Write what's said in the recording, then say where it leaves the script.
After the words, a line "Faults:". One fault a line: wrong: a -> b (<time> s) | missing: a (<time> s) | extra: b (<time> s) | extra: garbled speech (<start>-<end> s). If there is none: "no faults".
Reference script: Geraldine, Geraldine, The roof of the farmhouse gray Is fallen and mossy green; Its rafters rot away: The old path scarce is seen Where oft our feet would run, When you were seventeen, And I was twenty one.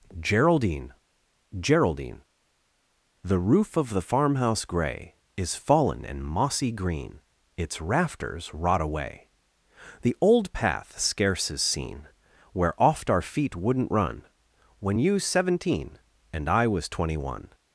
Geraldine, Geraldine, The roof of the farmhouse gray Is fallen and mossy green; Its rafters rot away: The old path scarce is seen Where oft our feet wouldn't run, When you seventeen, And I was twenty one.
Faults:
wrong: would -> wouldn't (13.6 s)
missing: were (15.2 s)